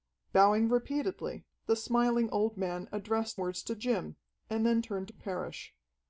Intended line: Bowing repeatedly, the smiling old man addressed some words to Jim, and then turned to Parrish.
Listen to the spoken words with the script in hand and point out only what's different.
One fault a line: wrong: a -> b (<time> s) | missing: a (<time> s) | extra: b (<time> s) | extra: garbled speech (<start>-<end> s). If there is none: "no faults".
missing: some (3.4 s)